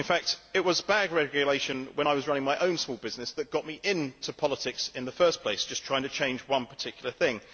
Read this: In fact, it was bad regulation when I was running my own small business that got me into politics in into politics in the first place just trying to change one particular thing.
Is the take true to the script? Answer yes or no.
no